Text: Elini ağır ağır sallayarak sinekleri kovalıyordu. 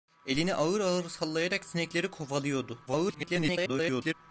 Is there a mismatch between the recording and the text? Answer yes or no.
yes